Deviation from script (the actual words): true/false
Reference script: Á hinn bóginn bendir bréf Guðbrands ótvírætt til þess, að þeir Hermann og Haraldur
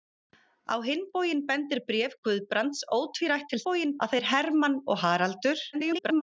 true